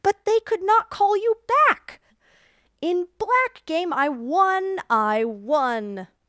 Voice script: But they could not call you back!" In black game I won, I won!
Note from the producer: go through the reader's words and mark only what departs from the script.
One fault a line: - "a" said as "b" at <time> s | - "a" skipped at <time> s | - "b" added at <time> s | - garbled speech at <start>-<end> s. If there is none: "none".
none